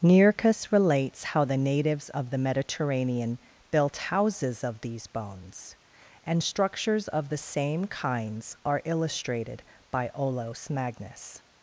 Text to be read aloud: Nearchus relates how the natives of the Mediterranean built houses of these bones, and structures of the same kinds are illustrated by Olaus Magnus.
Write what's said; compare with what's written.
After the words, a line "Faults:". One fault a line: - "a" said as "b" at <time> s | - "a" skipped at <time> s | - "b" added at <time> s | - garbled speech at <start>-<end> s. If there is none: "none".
Nearchus relates how the natives of the Mediterranean built houses of these bones, and structures of the same kinds are illustrated by Olaus Magnus.
Faults:
none